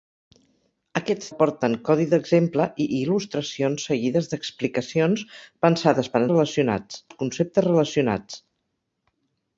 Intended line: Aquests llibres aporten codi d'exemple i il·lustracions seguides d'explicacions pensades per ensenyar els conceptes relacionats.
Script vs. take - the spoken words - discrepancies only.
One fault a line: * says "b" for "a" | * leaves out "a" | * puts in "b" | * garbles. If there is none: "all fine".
* leaves out "llibres"
* says "relacionats" for "ensenyar"